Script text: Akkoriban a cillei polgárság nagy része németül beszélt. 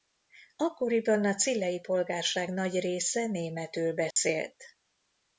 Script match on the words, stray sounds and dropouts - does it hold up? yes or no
no